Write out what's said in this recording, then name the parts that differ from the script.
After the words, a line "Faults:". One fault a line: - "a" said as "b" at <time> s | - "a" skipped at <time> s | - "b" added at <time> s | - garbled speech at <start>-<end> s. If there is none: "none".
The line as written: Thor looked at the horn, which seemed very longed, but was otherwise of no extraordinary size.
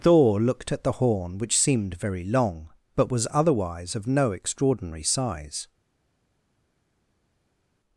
Thor looked at the horn, which seemed very long, but was otherwise of no extraordinary size.
Faults:
- "longed" said as "long" at 2.2 s